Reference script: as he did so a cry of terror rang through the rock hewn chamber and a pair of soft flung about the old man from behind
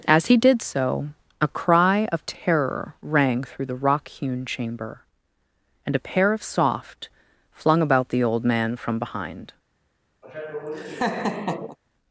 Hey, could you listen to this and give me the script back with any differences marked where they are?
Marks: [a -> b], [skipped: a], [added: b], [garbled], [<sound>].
as he did so a cry of terror rang through the rock hewn chamber and a pair of soft flung about the old man from behind [laugh]